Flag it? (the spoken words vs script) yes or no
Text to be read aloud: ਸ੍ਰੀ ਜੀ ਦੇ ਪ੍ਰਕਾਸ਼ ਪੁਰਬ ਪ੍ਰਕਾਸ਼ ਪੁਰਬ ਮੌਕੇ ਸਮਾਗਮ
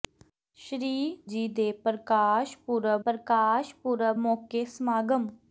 no